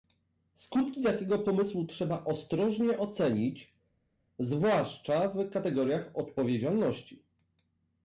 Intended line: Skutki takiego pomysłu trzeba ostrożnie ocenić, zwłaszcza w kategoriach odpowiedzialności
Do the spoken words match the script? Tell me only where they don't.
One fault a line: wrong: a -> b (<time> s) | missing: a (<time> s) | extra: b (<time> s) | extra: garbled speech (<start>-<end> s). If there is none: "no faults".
no faults